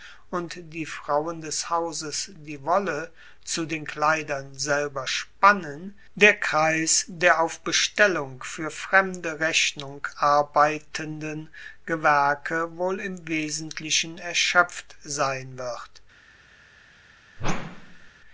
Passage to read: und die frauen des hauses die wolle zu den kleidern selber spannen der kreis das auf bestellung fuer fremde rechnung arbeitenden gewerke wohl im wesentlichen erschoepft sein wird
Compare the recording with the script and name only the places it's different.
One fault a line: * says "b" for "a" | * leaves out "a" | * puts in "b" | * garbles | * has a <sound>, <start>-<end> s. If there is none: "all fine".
* says "der" for "das"
* has a whoosh, 17.4-18.1 s